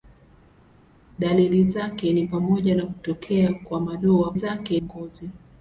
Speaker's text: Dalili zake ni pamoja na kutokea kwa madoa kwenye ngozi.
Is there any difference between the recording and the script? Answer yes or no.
yes